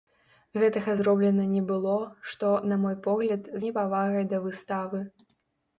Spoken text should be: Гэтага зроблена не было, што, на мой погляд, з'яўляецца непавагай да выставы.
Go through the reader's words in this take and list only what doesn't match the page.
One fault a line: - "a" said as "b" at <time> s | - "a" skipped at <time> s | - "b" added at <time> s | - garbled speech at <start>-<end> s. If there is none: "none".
- "з'яўляецца" skipped at 3.5 s